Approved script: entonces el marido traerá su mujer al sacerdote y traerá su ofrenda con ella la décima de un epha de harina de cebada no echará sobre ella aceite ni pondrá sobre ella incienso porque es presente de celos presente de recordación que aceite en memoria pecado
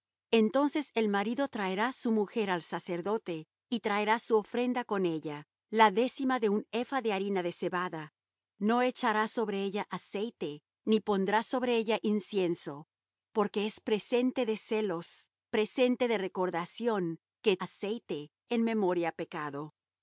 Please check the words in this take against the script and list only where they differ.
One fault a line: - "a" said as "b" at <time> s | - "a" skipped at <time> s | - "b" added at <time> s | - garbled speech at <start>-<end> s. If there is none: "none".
none